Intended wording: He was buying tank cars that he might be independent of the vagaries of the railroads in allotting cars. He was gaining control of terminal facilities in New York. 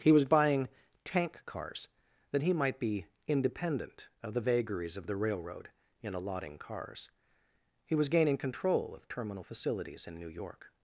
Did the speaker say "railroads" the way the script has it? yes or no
no